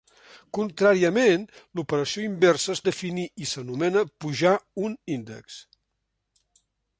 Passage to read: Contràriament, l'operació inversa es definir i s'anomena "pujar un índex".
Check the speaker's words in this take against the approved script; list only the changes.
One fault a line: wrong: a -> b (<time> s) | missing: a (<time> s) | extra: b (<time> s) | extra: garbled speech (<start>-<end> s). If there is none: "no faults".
no faults